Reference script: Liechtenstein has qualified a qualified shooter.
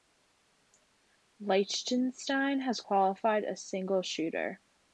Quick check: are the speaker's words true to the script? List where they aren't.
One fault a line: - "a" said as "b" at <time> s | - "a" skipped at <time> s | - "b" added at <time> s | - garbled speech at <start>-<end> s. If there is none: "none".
- "qualified" said as "single" at 3.6 s